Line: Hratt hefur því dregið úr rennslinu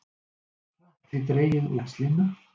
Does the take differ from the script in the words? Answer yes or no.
yes